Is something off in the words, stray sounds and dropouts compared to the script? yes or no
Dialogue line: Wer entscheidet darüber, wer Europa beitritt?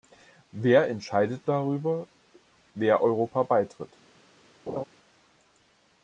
yes